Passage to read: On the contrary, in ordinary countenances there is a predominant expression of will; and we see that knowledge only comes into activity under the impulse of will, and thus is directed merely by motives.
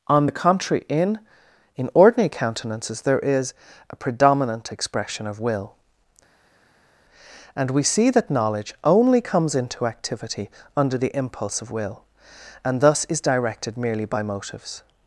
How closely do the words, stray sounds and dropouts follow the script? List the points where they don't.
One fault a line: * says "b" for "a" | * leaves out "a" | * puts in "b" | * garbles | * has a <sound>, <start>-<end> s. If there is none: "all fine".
* puts in "in"